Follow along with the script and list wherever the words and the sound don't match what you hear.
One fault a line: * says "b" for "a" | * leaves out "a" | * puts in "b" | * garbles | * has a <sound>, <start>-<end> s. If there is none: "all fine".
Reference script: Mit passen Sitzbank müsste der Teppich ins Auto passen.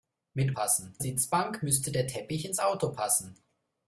all fine